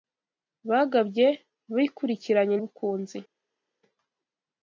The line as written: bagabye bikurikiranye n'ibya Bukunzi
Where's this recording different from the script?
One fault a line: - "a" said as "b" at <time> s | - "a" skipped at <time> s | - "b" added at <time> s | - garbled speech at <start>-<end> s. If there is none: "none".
- "n'ibya" skipped at 2.5 s